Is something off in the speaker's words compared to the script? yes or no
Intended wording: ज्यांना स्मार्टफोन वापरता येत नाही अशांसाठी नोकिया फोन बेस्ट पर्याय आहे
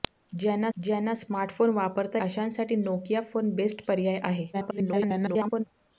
yes